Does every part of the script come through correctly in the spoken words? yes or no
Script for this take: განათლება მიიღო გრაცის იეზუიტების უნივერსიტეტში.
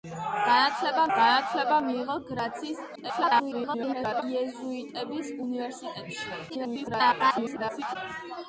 no